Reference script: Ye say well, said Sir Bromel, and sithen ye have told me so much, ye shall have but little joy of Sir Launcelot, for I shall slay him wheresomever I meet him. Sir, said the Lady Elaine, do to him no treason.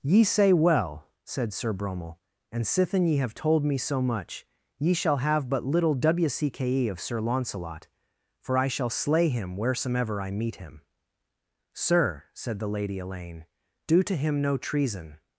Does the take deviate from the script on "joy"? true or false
true